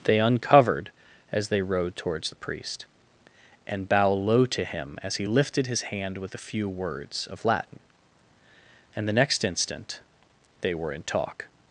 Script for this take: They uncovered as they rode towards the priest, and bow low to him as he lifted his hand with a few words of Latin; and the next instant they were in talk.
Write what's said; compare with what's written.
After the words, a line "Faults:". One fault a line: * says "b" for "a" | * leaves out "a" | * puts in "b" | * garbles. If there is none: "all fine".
They uncovered as they rode towards the priest, and bow low to him as he lifted his hand with a few words of Latin; and the next instant they were in talk.
Faults:
all fine